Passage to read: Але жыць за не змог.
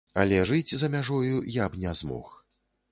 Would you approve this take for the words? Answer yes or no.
no